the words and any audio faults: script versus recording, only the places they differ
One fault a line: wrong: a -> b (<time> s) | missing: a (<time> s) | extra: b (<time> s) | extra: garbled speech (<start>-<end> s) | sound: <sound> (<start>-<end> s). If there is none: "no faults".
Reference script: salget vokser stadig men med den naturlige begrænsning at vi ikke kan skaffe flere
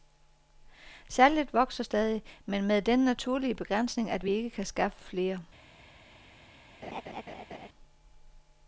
sound: laugh (6.8-7.7 s)